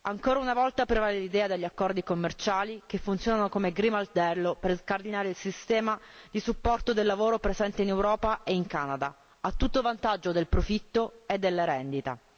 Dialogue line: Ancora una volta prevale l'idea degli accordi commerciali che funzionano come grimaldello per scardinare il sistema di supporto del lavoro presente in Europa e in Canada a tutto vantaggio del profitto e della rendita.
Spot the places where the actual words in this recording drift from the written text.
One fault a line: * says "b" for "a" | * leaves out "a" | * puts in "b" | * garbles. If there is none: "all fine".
all fine